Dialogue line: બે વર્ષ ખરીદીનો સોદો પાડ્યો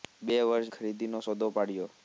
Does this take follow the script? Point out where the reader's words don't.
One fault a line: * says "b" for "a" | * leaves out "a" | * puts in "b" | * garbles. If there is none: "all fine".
all fine